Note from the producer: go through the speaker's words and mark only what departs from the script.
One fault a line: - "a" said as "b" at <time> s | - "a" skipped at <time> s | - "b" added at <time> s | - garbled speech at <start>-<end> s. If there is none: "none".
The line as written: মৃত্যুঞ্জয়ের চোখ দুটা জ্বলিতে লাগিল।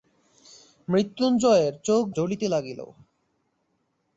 - "দুটা" skipped at 2.0 s